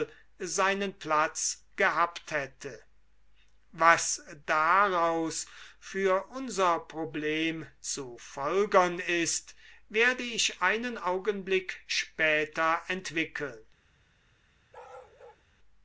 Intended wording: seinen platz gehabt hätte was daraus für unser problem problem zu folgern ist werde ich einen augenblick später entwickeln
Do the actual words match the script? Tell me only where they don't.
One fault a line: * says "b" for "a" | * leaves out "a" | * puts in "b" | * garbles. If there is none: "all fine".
* leaves out "problem"